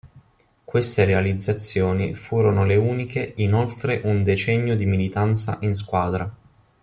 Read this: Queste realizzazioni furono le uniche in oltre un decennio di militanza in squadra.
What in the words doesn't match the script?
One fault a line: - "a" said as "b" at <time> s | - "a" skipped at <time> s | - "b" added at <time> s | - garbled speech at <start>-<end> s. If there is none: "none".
none